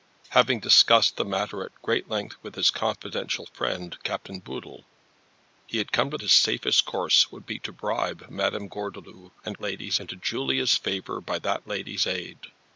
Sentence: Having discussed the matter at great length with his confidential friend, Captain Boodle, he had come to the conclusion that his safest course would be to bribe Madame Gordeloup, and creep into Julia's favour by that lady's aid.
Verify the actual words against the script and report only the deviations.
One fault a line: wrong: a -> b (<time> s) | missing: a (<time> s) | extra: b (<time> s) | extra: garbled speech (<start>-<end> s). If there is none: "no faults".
missing: the conclusion that (6.2 s)
wrong: creep -> lady's (9.6 s)